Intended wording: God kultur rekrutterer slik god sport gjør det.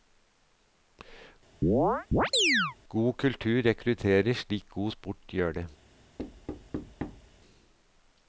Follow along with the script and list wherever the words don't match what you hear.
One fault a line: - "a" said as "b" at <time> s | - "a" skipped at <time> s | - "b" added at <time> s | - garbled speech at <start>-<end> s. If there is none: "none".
none